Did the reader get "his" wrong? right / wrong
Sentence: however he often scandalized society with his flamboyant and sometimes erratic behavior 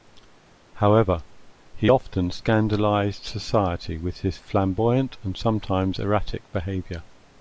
right